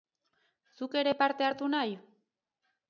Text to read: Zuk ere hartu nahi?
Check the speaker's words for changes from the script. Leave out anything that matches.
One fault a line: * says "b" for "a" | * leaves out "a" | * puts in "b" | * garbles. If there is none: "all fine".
* puts in "parte"